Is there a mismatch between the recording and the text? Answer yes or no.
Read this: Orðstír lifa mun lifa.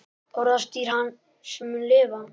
yes